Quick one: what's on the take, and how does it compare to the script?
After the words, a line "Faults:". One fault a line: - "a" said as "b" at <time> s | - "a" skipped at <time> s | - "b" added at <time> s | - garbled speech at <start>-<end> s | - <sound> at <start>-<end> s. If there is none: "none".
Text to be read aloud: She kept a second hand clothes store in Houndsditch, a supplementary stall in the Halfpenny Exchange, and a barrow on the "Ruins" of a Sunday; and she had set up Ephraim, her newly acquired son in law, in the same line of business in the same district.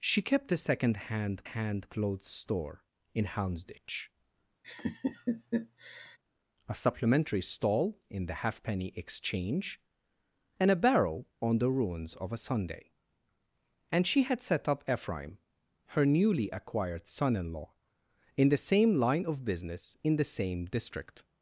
She kept a second hand hand clothes store in Houndsditch, a supplementary stall in the Halfpenny Exchange, and a barrow on the "Ruins" of a Sunday; and she had set up Ephraim, her newly acquired son in law, in the same line of business in the same district.
Faults:
- "hand" added at 1.4 s
- laugh at 4.6-6.2 s